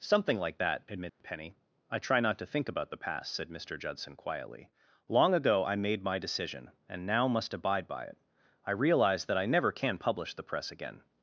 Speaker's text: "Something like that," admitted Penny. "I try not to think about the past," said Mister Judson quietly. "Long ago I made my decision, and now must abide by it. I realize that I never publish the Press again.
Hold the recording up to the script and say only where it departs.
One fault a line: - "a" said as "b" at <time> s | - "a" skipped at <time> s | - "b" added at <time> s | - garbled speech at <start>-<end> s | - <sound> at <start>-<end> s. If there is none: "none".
- dropout at 1.1-1.2 s
- "can" added at 9.7 s